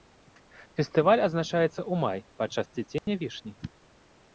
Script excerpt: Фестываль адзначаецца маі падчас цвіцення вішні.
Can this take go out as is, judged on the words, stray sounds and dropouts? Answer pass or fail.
fail